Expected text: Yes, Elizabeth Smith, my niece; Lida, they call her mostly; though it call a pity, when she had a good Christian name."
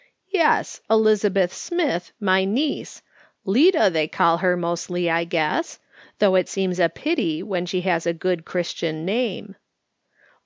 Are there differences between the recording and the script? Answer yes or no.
yes